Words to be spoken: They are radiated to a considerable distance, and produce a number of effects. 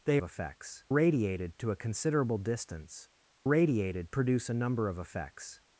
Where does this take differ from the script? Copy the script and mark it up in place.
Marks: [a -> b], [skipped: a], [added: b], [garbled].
They [are -> effects] radiated to a considerable distance, [and -> radiated] produce a number of effects.